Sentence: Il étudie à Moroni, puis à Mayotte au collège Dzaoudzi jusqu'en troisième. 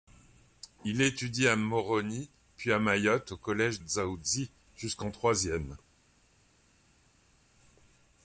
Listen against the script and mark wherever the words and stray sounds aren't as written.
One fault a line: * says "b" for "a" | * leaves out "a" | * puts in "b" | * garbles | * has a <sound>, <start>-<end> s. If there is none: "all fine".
all fine